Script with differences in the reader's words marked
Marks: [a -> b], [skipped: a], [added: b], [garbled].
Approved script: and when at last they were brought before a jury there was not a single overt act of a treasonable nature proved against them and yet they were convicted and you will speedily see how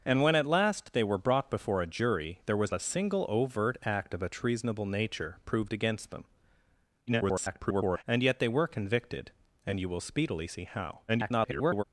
and when at last they were brought before a jury there was [skipped: not] a single overt act of a treasonable nature proved against them [garbled] and yet they were convicted and you will speedily see how [garbled]